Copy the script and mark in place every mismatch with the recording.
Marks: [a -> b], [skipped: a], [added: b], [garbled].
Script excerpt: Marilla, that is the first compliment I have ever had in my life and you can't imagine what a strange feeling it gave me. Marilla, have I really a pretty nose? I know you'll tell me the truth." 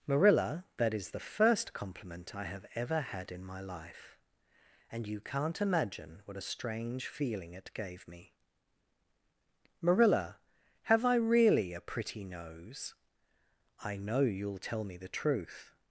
Marilla, that is the first compliment I have ever had in my life and you can't imagine what a strange feeling it gave me. Marilla, have I really a pretty nose? I know you'll tell me the truth."